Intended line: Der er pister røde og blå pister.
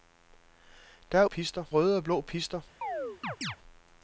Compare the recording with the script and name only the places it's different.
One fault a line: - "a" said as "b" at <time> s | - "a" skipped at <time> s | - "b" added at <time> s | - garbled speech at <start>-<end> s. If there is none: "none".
none